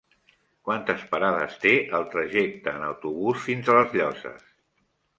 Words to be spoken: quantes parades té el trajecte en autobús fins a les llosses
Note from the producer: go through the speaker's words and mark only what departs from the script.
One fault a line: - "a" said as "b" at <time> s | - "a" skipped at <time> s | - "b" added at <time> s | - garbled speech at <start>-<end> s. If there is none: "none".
none